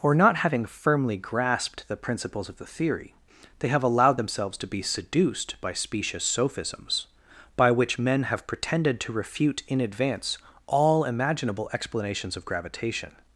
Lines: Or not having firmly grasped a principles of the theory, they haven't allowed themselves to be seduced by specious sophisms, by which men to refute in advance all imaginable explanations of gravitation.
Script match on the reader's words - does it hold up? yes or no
no